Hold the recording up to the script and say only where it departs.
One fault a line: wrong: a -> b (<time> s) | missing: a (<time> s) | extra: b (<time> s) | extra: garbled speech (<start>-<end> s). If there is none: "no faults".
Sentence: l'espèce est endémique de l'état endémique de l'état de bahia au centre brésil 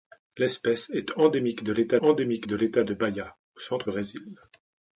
no faults